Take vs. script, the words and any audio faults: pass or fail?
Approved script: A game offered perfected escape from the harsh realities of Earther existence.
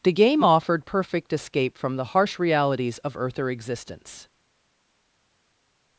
fail